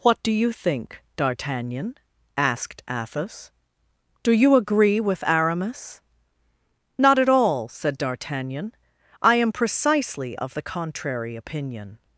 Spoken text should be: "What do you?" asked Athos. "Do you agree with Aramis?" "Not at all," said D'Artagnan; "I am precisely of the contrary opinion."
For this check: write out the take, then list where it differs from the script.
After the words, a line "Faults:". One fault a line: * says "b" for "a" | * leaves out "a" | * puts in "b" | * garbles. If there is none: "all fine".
"What do you think, D'Artagnan?" asked Athos. "Do you agree with Aramis?" "Not at all," said D'Artagnan; "I am precisely of the contrary opinion."
Faults:
* puts in "think D'Artagnan"